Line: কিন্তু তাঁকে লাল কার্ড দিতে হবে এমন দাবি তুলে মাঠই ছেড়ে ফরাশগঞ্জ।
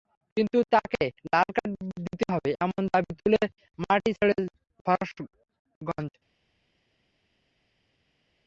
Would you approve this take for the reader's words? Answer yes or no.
yes